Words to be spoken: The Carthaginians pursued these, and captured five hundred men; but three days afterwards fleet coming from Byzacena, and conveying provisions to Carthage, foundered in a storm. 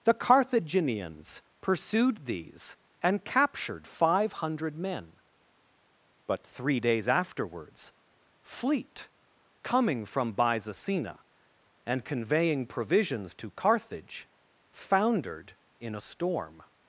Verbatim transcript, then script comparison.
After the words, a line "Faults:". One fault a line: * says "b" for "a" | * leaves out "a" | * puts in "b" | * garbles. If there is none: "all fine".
The Carthaginians pursued these, and captured five hundred men; but three days afterwards fleet coming from Byzacena, and conveying provisions to Carthage, foundered in a storm.
Faults:
all fine